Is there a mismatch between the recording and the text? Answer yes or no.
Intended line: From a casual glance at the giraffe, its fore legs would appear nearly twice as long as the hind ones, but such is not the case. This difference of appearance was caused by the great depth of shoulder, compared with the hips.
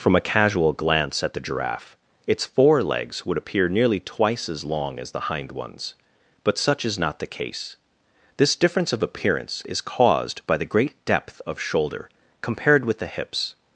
yes